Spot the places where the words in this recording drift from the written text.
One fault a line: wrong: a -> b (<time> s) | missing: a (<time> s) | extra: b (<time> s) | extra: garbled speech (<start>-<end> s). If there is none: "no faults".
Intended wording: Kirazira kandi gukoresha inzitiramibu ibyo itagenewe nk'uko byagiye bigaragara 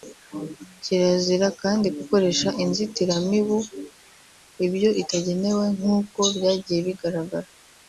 no faults